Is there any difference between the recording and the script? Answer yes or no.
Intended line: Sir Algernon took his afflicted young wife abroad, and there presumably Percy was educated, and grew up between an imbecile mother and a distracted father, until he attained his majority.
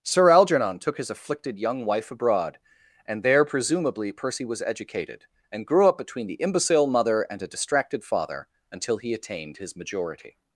yes